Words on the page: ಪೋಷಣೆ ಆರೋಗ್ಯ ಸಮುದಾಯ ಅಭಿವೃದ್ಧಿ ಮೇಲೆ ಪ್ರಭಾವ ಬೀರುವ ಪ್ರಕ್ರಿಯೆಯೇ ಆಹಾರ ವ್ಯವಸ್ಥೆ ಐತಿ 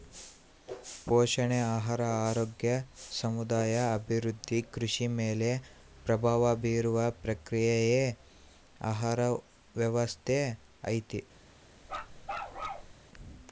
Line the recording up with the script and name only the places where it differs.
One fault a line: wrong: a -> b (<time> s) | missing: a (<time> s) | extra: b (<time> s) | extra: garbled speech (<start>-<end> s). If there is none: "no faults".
extra: ಆಹಾರ (1.7 s)
extra: ಕೃಷಿ (4.7 s)